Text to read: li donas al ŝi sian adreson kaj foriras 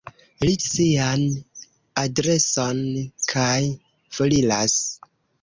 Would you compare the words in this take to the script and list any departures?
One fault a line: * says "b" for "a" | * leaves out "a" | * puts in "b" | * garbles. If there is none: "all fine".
* leaves out "donas al ŝi"